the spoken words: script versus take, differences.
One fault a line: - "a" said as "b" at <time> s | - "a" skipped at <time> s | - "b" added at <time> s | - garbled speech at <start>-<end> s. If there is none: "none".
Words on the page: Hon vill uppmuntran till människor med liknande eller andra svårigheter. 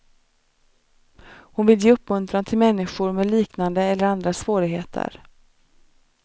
- "ge" added at 1.8 s